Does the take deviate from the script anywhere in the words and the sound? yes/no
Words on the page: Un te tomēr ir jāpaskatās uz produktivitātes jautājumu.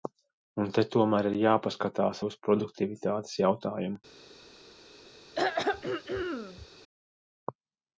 yes